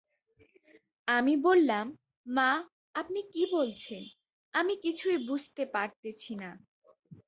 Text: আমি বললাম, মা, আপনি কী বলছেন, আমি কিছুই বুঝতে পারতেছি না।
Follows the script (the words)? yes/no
yes